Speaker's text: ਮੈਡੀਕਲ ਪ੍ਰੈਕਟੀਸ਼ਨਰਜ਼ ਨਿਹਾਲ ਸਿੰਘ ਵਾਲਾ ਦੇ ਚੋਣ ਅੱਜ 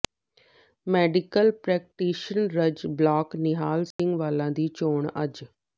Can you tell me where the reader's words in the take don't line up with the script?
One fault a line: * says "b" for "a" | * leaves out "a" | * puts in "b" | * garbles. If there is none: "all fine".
* puts in "ਬਲਾਕ"
* says "ਦੀ" for "ਦੇ"